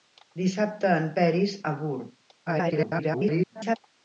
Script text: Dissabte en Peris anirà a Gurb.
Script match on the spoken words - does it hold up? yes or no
no